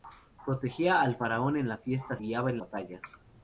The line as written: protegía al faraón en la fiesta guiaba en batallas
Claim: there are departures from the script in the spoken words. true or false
false